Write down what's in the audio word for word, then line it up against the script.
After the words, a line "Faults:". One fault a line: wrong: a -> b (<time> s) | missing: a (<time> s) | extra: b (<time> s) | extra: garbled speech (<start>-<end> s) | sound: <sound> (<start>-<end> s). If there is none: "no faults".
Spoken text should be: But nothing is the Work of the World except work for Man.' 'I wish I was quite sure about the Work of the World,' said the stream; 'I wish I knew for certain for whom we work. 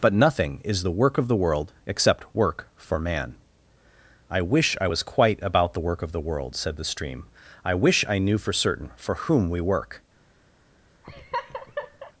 But nothing is the Work of the World except work for Man.' 'I wish I was quite about the Work of the World,' said the stream; 'I wish I knew for certain for whom we work.
Faults:
missing: sure (5.4 s)
sound: laugh (11.0-12.1 s)